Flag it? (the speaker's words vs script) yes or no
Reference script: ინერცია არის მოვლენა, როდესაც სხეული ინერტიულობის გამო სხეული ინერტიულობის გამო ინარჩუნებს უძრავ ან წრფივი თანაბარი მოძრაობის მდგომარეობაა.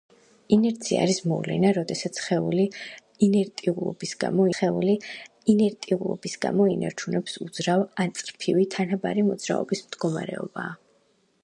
no